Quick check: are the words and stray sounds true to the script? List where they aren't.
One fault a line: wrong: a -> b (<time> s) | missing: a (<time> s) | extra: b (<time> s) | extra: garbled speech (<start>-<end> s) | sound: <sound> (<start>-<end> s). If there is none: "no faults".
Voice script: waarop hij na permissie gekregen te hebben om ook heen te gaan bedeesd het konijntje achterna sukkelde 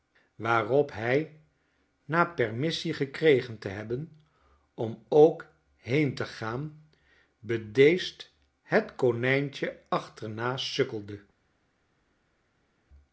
no faults